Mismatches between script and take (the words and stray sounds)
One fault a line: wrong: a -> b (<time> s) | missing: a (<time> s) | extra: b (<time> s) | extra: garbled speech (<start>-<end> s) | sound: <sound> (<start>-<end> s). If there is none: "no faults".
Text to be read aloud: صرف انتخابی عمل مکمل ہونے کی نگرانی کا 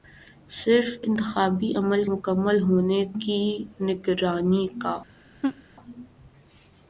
sound: laugh (5.4-5.6 s)